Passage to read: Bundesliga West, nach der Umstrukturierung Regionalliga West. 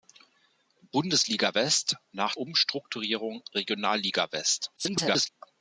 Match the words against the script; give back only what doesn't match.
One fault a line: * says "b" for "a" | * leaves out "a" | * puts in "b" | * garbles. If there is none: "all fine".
* leaves out "der"
* garbles